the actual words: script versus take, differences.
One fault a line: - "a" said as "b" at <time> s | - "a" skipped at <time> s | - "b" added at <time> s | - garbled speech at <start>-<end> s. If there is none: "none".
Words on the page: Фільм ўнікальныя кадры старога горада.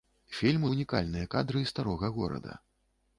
none